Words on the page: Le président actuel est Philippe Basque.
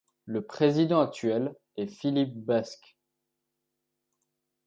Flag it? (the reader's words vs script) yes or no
no